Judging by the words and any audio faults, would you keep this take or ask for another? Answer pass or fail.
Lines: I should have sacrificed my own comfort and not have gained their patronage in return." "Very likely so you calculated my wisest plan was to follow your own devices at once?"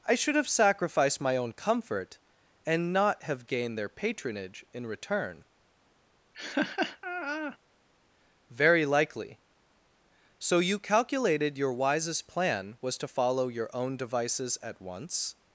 fail